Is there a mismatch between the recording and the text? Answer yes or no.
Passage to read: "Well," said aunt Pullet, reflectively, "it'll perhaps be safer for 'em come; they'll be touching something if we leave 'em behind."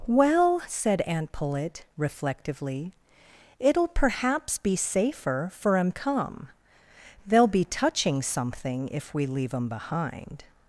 no